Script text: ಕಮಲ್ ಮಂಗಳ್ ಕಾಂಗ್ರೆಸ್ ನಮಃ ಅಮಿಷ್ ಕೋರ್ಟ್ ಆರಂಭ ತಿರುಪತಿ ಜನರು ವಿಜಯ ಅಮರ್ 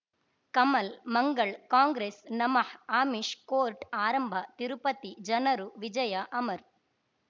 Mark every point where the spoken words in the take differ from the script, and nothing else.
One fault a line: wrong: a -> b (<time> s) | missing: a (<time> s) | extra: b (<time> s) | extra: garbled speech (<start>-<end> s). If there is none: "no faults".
no faults